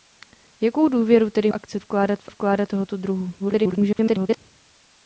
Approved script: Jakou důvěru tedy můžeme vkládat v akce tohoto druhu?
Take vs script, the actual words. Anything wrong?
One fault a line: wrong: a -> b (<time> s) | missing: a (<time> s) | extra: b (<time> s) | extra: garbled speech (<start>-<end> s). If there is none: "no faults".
wrong: můžeme -> akce (1.5 s)
wrong: akce -> vkládat (2.3 s)
extra: garbled speech (3.4-4.4 s)